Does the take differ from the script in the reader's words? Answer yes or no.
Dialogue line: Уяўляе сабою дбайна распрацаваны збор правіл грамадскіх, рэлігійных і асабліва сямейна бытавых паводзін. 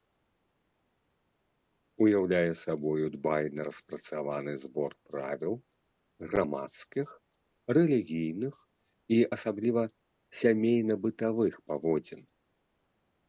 no